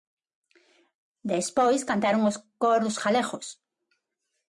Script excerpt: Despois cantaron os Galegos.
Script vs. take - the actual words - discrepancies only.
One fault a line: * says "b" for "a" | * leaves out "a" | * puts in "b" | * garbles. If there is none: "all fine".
* puts in "Coros"